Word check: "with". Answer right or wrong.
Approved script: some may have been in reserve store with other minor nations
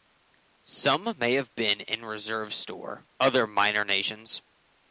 wrong